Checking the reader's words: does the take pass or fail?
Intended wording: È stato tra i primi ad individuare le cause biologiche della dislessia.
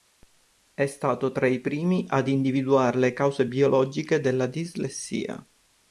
pass